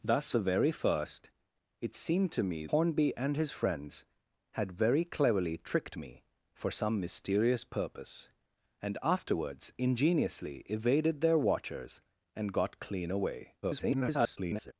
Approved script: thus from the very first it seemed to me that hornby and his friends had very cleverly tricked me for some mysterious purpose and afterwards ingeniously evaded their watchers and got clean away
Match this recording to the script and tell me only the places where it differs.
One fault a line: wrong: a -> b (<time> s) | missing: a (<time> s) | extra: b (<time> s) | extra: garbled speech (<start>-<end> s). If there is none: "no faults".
missing: from (0.3 s)
missing: that (2.7 s)
extra: garbled speech (13.6-14.7 s)